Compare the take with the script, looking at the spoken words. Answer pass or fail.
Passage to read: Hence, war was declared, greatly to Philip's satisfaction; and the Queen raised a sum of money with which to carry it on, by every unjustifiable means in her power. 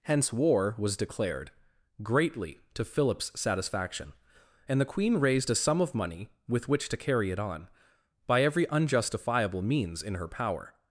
pass